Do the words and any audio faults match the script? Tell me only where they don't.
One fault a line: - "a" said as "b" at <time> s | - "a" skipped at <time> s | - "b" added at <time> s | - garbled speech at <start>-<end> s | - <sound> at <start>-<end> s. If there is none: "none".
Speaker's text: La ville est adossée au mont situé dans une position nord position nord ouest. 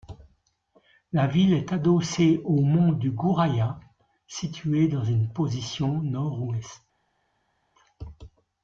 - "du Gouraya" added at 2.9 s
- "position nord" skipped at 6.4 s